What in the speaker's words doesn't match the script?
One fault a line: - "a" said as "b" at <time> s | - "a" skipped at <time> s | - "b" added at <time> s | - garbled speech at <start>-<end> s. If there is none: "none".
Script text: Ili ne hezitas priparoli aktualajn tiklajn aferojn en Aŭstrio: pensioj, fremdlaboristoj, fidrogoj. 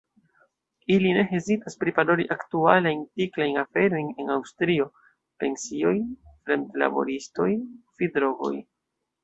none